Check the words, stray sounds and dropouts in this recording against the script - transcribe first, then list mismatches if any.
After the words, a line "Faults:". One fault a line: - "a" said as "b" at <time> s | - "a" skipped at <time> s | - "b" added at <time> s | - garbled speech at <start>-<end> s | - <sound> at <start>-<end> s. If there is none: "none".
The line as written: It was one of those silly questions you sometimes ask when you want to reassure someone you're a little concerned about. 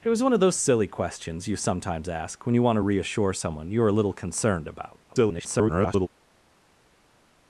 It was one of those silly questions you sometimes ask when you want to reassure someone you're a little concerned about. [garbled]
Faults:
- garbled speech at 5.1-6.1 s